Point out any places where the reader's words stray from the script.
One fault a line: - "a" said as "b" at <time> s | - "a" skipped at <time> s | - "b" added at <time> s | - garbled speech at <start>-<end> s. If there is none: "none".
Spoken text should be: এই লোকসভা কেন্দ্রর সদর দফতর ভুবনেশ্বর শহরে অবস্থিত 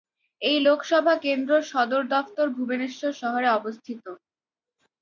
none